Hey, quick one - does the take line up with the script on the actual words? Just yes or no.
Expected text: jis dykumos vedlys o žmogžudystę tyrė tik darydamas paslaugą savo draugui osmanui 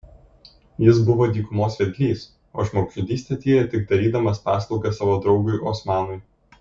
no